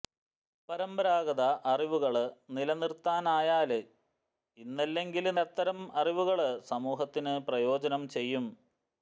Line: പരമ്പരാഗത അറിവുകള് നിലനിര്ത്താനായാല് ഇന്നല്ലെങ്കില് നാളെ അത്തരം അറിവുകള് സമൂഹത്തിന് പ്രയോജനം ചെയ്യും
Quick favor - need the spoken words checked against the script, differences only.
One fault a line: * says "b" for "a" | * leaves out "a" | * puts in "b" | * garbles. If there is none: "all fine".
* leaves out "നാളെ"